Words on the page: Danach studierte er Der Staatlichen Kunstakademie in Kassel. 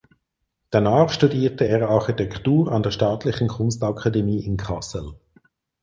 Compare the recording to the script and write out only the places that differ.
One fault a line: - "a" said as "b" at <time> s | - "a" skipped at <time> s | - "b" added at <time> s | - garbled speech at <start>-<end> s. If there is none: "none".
- "Architektur an" added at 1.9 s